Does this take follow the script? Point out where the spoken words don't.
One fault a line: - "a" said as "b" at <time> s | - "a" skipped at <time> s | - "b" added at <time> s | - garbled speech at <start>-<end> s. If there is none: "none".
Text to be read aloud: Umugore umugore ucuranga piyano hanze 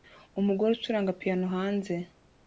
- "umugore" skipped at 0.7 s